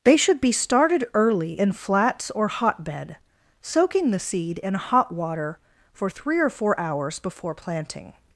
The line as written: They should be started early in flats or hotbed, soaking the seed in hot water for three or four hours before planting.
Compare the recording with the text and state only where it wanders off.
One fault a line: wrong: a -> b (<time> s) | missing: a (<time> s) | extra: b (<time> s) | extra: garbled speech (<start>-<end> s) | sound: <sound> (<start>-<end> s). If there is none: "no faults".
no faults